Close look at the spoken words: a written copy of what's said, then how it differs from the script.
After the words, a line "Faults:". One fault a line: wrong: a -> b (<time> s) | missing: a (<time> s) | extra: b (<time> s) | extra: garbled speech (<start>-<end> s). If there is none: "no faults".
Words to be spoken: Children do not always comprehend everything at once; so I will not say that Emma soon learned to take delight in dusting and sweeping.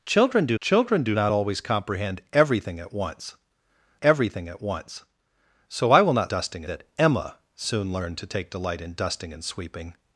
Children do children do not always comprehend everything at once everything at once; so I will not dusting that Emma soon learned to take delight in dusting and sweeping.
Faults:
extra: children do (0.6 s)
extra: everything at once (4.0 s)
wrong: say -> dusting (6.3 s)